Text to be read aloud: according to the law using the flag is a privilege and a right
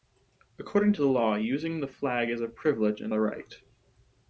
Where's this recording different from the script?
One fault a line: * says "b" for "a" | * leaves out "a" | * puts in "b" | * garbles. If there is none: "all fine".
all fine